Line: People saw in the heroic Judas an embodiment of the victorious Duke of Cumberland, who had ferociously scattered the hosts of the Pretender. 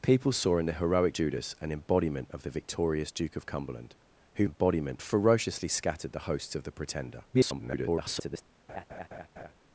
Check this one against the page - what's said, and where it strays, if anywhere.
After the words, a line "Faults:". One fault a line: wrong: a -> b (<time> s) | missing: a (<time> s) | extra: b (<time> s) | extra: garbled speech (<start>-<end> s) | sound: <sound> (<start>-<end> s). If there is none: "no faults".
People saw in the heroic Judas an embodiment of the victorious Duke of Cumberland, who embodiment ferociously scattered the hosts of the Pretender. [garbled]
Faults:
wrong: had -> embodiment (4.4 s)
extra: garbled speech (7.3-8.4 s)
sound: laugh (8.7-9.5 s)